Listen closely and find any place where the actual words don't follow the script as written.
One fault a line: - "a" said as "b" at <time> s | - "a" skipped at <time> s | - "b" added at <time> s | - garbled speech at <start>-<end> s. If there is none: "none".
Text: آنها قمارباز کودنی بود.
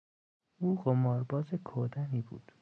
- "آنها" said as "او" at 0.6 s